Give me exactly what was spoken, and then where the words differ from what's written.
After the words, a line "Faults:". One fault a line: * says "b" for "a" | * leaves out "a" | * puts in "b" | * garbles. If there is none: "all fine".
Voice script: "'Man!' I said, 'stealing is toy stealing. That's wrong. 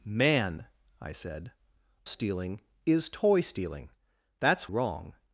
"'Man!' I said, 'stealing is toy stealing. That's wrong.
Faults:
all fine